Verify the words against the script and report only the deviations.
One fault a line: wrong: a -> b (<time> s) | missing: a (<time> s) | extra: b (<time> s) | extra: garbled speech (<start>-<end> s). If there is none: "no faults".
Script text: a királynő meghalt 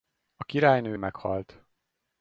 no faults